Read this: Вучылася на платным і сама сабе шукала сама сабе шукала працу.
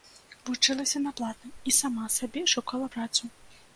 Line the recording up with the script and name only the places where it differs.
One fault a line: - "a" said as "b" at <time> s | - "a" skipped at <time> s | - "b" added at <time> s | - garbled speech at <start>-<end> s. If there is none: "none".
- "сама сабе шукала" skipped at 2.9 s